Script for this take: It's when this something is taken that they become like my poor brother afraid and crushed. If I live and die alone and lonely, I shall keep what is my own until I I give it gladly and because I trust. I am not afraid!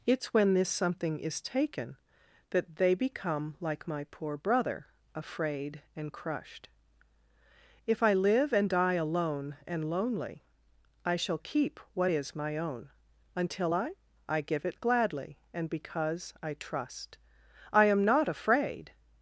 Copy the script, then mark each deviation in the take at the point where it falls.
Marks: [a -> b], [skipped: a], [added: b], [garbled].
It's when this something is taken that they become like my poor brother afraid and crushed. If I live and die alone and lonely, I shall keep what is my own until I I give it gladly and because I trust. I am not afraid!